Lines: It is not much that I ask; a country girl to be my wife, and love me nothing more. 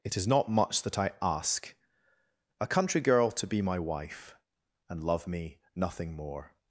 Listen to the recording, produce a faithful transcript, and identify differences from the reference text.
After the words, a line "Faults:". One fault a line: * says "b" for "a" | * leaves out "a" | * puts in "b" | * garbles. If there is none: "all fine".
It is not much that I ask; a country girl to be my wife, and love me nothing more.
Faults:
all fine